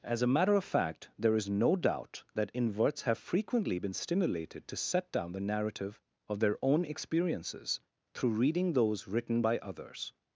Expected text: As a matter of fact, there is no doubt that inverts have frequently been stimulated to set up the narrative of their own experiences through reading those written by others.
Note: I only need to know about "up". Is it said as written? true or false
false